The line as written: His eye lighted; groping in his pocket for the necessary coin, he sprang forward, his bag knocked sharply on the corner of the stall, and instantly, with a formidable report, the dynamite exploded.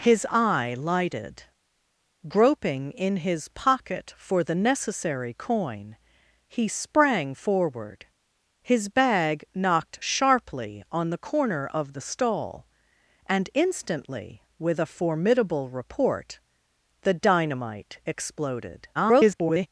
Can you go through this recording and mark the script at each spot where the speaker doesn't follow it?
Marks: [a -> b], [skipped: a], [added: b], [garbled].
His eye lighted; groping in his pocket for the necessary coin, he sprang forward, his bag knocked sharply on the corner of the stall, and instantly, with a formidable report, the dynamite exploded. [garbled]